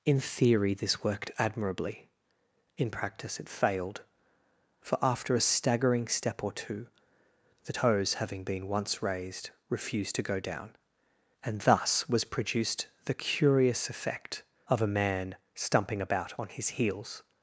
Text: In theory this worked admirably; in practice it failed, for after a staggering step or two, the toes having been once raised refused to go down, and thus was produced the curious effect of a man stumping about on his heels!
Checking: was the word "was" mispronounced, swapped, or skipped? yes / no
no